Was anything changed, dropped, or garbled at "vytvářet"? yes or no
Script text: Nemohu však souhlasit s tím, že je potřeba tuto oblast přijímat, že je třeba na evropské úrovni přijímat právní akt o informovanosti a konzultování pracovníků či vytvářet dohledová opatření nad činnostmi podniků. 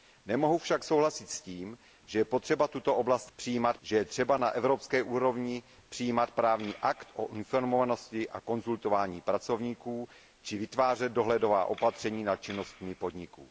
no